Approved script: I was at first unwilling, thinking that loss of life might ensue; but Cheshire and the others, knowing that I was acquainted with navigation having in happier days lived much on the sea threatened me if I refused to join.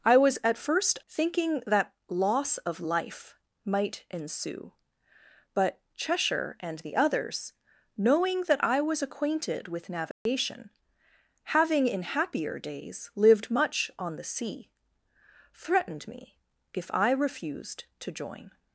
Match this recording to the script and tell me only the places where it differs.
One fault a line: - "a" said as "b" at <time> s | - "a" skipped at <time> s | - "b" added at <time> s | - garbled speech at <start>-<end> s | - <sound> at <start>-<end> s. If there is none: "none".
- "unwilling" skipped at 1.0 s
- dropout at 10.1-10.3 s